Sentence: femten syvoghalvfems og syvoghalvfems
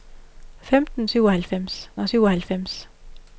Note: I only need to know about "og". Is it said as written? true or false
true